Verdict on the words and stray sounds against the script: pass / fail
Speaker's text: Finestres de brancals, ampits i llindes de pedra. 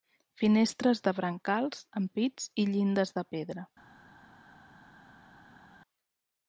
pass